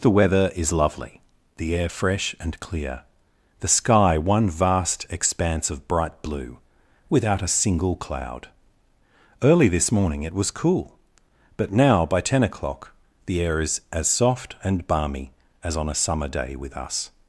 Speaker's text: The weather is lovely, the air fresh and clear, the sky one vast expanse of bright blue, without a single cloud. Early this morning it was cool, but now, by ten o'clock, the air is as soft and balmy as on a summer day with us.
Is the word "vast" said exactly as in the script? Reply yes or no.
yes